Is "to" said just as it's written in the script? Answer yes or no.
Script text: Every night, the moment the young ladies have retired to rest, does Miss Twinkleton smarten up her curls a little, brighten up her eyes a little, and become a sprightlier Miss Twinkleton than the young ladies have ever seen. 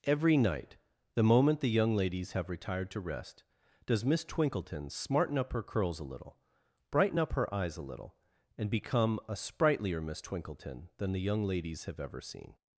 yes